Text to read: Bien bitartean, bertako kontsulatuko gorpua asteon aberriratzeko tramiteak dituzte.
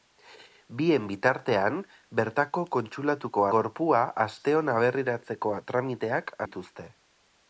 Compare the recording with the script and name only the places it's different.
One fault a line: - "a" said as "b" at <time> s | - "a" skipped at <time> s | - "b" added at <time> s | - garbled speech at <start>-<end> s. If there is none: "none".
none